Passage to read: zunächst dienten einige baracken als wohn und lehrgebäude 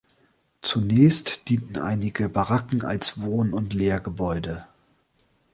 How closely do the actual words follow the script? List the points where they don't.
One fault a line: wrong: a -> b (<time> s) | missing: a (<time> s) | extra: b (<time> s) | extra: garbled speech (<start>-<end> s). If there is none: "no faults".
no faults